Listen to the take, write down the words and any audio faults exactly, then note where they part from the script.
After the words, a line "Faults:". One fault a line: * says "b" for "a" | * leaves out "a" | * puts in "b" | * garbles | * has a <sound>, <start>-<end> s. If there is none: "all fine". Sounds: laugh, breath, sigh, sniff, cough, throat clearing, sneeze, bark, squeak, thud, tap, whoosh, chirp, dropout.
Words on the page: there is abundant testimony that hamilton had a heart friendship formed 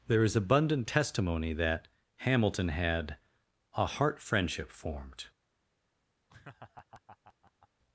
there is abundant testimony that hamilton had a heart friendship formed
Faults:
* has a laugh, 6.3-7.7 s